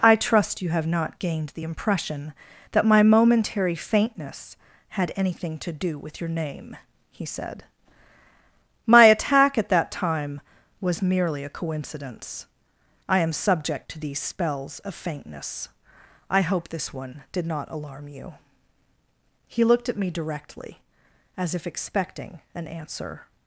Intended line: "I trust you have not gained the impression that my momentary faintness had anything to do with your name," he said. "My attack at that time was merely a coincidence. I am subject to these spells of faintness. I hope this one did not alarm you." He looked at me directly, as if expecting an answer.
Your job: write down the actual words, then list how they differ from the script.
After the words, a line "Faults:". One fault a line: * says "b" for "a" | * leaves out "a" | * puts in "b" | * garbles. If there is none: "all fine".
"I trust you have not gained the impression that my momentary faintness had anything to do with your name," he said. "My attack at that time was merely a coincidence. I am subject to these spells of faintness. I hope this one did not alarm you." He looked at me directly, as if expecting an answer.
Faults:
all fine